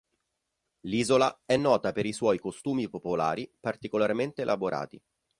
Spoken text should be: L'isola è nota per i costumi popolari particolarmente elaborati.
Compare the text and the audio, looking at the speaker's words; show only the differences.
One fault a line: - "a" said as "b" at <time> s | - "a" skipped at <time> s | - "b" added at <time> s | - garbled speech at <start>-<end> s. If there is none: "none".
- "suoi" added at 2.1 s